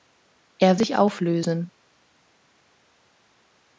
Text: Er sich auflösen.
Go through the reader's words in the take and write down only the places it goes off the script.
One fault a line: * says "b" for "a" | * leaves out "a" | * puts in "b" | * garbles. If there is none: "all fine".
all fine